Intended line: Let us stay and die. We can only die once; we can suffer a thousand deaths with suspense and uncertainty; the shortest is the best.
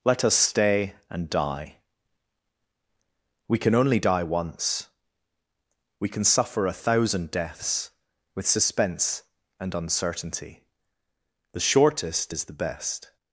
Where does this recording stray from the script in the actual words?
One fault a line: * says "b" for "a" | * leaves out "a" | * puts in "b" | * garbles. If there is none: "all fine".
all fine